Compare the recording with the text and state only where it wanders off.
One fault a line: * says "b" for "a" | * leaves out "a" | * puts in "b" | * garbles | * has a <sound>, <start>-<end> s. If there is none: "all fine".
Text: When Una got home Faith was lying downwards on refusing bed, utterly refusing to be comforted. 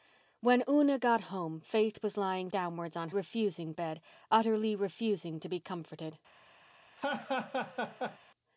* has a laugh, 7.0-8.2 s